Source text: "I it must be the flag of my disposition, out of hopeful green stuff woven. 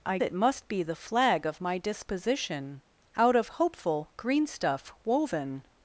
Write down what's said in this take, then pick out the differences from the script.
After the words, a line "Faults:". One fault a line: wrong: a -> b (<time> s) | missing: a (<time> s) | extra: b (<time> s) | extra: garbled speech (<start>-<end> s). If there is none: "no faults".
"I it must be the flag of my disposition, out of hopeful green stuff woven.
Faults:
no faults